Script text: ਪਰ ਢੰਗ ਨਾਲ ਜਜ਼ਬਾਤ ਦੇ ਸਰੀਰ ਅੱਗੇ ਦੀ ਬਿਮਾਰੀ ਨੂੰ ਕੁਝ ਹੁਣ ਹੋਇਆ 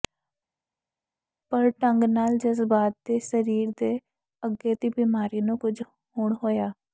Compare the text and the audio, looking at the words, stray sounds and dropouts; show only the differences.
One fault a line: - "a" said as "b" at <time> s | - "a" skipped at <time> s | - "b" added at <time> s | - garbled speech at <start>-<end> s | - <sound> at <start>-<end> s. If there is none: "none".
- "ਦੇ" added at 3.8 s